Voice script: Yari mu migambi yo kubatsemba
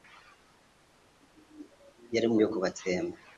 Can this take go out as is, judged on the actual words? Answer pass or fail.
fail